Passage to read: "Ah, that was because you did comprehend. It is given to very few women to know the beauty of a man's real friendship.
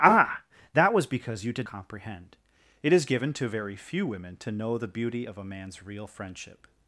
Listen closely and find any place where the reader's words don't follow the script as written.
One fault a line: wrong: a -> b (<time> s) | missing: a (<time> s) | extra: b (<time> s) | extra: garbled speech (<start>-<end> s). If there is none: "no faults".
no faults